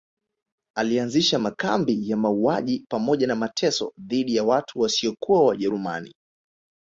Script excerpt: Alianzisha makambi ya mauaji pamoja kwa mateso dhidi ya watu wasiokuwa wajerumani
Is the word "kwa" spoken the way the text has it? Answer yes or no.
no